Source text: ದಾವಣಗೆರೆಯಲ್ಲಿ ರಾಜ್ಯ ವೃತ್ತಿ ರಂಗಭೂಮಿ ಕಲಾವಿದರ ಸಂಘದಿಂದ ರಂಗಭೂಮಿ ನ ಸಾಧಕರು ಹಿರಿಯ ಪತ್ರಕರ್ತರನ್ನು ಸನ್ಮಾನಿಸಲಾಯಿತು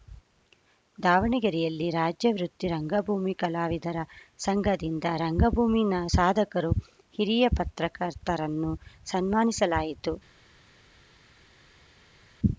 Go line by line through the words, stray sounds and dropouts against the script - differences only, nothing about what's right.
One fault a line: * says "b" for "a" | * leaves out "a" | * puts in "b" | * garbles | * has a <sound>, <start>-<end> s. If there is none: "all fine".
all fine